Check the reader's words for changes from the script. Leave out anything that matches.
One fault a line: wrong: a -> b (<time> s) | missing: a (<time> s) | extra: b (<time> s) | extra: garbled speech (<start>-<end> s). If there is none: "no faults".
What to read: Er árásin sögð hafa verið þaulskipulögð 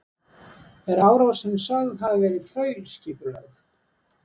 no faults